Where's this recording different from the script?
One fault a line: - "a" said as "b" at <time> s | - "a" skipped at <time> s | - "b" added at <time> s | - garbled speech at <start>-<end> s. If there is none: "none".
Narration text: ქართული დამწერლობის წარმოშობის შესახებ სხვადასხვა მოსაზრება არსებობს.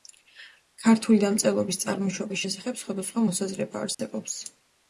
none